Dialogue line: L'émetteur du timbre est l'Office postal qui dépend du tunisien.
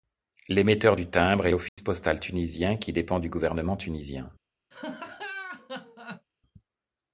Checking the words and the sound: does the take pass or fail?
fail